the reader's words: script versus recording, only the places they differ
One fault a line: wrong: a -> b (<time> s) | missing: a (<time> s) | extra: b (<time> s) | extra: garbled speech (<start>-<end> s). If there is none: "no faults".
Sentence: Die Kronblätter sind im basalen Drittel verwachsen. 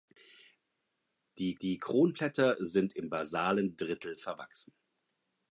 extra: die (1.6 s)